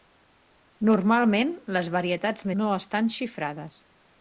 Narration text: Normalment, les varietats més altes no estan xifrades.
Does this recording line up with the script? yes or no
no